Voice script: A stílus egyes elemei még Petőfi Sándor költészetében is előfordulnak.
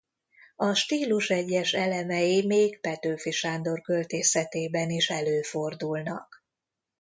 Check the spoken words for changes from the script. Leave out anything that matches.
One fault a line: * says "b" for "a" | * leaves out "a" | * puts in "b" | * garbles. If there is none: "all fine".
all fine